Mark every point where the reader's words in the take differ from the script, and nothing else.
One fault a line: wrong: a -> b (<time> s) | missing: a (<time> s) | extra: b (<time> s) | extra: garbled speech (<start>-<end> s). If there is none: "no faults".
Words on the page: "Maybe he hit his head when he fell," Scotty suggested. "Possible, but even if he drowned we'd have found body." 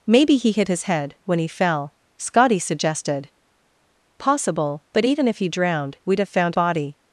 no faults